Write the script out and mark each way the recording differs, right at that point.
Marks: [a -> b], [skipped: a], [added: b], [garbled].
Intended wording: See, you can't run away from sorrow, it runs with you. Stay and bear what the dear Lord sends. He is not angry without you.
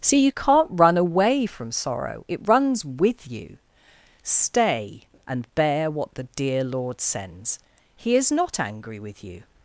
See, you can't run away from sorrow, it runs with you. Stay and bear what the dear Lord sends. He is not angry [without -> with] you.